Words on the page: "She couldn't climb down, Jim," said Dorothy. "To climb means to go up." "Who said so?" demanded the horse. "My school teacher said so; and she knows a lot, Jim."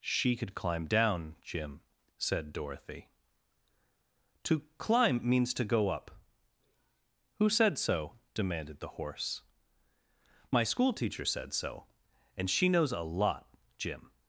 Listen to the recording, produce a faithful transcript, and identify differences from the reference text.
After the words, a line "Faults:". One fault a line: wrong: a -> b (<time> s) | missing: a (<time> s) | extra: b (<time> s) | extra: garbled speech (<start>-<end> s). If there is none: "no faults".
"She could climb down, Jim," said Dorothy. "To climb means to go up." "Who said so?" demanded the horse. "My school teacher said so; and she knows a lot, Jim."
Faults:
wrong: couldn't -> could (0.3 s)